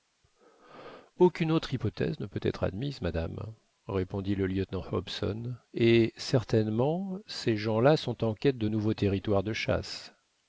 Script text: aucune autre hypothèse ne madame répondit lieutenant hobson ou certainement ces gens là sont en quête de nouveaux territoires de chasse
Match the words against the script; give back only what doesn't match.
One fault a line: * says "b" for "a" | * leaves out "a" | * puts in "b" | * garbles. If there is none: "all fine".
* puts in "peut être admise"
* puts in "le"
* says "et" for "ou"